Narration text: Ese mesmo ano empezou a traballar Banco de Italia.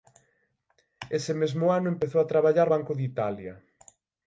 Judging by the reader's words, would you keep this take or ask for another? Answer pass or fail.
pass